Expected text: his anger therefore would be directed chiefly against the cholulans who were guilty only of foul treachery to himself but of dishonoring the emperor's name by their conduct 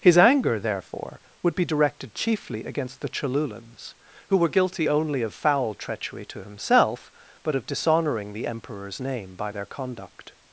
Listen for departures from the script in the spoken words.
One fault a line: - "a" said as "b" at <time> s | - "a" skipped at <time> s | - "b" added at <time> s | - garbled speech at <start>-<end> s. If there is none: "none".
none